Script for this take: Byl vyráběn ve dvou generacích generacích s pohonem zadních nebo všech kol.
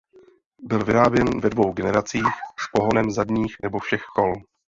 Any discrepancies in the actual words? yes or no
yes